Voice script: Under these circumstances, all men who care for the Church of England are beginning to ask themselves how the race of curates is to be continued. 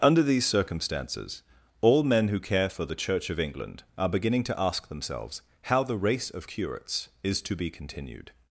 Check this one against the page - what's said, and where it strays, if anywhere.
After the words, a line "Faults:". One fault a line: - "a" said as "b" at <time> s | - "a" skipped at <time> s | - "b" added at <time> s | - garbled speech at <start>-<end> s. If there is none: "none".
Under these circumstances, all men who care for the Church of England are beginning to ask themselves how the race of curates is to be continued.
Faults:
none